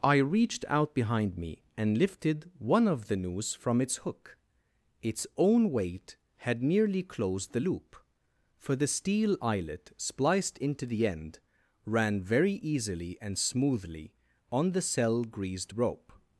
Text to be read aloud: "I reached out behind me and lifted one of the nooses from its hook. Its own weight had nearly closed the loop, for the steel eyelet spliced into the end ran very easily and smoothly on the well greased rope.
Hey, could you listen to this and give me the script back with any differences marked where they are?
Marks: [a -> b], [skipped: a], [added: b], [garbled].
"I reached out behind me and lifted one of the [nooses -> noose] from its hook. Its own weight had nearly closed the loop, for the steel eyelet spliced into the end ran very easily and smoothly on the [well -> cell] greased rope.